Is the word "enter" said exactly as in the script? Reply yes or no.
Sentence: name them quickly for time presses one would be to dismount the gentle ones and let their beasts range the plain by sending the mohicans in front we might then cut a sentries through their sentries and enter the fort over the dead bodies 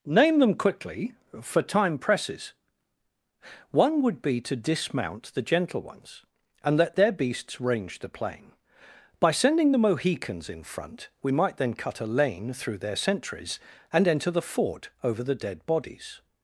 yes